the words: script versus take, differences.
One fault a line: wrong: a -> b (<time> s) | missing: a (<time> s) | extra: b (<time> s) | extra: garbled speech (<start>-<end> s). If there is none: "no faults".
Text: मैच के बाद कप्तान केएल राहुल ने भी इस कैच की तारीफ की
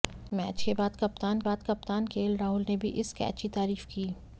extra: बाद कप्तान (1.4 s)